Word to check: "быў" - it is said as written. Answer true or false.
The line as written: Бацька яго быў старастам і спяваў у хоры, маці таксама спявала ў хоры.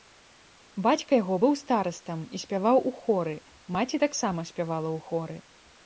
true